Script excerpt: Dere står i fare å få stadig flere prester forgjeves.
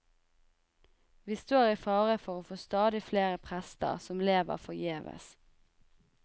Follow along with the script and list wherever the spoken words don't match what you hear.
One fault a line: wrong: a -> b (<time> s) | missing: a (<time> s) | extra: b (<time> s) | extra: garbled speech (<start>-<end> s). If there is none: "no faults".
wrong: Dere -> Vi (1.2 s)
extra: for (2.2 s)
extra: som lever (4.1 s)